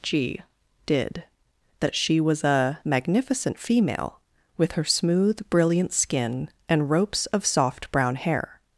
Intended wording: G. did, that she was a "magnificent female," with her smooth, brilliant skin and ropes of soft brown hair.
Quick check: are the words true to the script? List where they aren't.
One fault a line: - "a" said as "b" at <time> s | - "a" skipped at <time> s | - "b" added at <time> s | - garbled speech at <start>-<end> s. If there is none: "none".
none